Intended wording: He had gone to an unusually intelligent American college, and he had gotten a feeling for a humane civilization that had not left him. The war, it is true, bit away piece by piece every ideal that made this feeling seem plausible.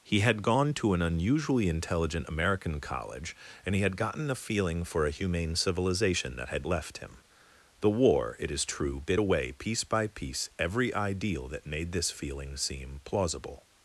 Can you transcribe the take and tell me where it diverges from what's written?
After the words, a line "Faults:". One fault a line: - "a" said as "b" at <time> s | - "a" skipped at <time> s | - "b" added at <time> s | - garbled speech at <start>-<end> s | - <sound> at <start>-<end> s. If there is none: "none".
He had gone to an unusually intelligent American college, and he had gotten a feeling for a humane civilization that had left him. The war, it is true, bit away piece by piece every ideal that made this feeling seem plausible.
Faults:
- "not" skipped at 6.7 s